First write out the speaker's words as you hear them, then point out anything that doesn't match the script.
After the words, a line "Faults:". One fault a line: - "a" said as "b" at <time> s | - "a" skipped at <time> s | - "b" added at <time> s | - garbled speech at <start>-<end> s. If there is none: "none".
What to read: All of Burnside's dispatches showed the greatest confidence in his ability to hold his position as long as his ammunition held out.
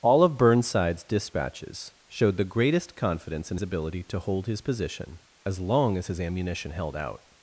All of Burnside's dispatches showed the greatest confidence in ability to hold his position as long as his ammunition held out.
Faults:
- "his" skipped at 3.6 s